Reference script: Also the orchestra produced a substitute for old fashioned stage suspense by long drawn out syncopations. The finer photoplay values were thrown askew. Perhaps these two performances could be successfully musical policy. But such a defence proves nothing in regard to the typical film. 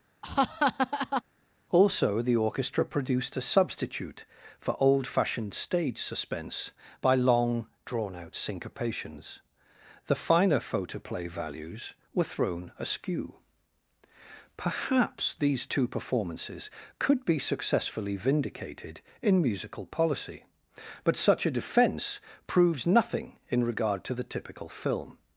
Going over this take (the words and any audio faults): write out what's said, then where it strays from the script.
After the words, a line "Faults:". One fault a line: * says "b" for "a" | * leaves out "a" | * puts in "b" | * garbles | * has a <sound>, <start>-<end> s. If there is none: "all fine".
Also the orchestra produced a substitute for old fashioned stage suspense by long drawn out syncopations. The finer photoplay values were thrown askew. Perhaps these two performances could be successfully vindicated in musical policy. But such a defence proves nothing in regard to the typical film.
Faults:
* has a laugh, 0.2-1.2 s
* puts in "vindicated in"